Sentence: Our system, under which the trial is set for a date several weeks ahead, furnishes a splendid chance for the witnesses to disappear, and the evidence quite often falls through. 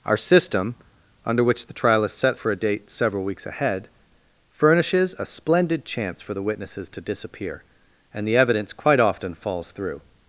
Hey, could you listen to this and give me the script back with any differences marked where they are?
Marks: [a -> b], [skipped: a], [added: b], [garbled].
Our system, under which the trial is set for a date several weeks ahead, furnishes a splendid chance for the witnesses to disappear, and the evidence quite often falls through.